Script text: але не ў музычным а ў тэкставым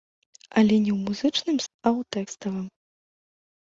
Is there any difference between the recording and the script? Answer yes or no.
no